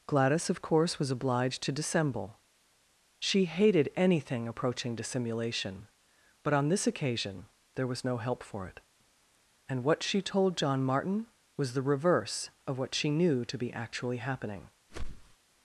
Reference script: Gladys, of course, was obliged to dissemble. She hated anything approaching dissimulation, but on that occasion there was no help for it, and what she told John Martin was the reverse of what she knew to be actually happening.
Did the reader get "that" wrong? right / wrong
wrong